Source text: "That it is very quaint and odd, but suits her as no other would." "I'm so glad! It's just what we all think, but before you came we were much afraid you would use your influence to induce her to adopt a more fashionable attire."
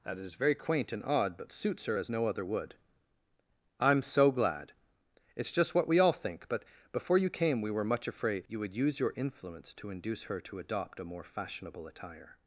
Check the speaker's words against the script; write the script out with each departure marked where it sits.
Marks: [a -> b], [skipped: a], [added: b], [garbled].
"That [skipped: it] is very quaint and odd, but suits her as no other would." "I'm so glad! It's just what we all think, but before you came we were much afraid you would use your influence to induce her to adopt a more fashionable attire."